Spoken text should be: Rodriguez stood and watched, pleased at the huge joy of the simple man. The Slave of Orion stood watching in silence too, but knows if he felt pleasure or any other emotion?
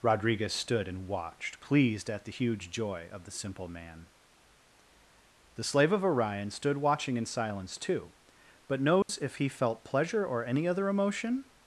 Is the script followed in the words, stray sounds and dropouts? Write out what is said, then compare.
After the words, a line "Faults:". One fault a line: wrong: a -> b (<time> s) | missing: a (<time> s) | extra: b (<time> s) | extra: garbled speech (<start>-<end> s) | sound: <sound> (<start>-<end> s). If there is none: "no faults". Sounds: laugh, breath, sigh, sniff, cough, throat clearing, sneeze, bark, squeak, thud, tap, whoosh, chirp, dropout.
Rodriguez stood and watched, pleased at the huge joy of the simple man. The Slave of Orion stood watching in silence too, but knows if he felt pleasure or any other emotion?
Faults:
sound: dropout (9.0-9.1 s)